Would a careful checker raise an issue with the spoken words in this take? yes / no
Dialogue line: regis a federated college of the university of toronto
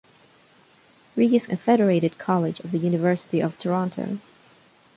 no